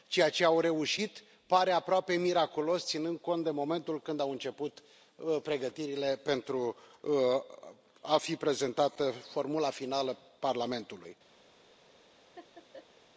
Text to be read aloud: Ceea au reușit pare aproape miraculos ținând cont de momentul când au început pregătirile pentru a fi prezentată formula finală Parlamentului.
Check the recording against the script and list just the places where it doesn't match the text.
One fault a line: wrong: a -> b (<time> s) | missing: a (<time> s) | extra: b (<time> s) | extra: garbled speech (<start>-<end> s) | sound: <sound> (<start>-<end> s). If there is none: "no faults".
extra: ce (0.3 s)
sound: laugh (12.4-13.1 s)